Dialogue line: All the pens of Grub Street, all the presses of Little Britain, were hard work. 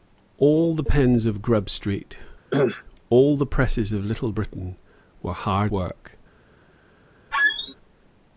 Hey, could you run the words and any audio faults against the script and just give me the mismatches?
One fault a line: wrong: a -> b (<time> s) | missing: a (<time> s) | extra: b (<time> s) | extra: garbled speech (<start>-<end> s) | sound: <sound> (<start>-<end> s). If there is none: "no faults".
sound: cough (2.5-2.8 s)
sound: squeak (7.3-7.7 s)